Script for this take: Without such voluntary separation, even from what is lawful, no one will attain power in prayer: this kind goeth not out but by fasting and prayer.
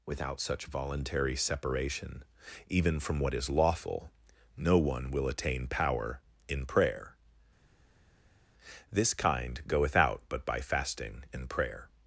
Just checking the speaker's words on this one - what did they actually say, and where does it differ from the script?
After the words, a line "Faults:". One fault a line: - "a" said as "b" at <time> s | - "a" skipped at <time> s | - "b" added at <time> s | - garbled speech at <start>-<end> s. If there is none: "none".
Without such voluntary separation, even from what is lawful, no one will attain power in prayer: this kind goeth out but by fasting and prayer.
Faults:
- "not" skipped at 9.9 s